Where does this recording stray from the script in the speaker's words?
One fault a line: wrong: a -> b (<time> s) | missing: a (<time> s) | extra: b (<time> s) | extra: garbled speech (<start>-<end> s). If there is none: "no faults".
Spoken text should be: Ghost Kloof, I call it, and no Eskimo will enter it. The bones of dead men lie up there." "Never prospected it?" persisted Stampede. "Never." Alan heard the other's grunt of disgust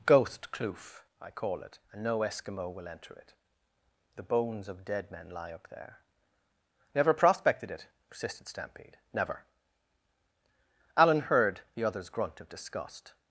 no faults